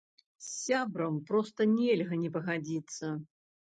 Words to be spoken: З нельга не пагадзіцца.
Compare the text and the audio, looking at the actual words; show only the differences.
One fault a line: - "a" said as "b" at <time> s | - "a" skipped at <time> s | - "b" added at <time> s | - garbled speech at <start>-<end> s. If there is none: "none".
- "сябрам проста" added at 0.6 s